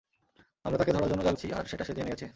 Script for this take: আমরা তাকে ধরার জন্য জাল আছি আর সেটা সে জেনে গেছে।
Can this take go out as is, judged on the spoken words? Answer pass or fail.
pass